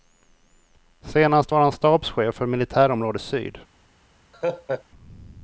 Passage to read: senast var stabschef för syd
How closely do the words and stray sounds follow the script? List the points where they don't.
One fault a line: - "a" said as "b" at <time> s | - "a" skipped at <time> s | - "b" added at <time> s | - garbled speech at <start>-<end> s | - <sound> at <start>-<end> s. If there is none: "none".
- "han" added at 1.6 s
- "militärområde" added at 2.5 s
- laugh at 4.3-4.8 s